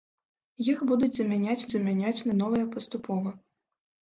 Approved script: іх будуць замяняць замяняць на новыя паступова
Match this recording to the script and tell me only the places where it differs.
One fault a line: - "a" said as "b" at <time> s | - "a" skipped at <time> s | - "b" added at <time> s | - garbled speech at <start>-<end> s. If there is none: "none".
none